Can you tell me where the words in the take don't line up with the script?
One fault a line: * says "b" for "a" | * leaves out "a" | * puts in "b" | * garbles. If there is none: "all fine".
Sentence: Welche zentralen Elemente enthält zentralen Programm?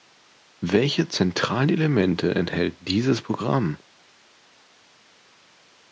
* says "dieses" for "zentralen"